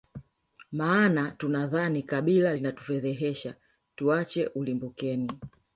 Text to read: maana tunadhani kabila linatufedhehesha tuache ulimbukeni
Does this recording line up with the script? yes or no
yes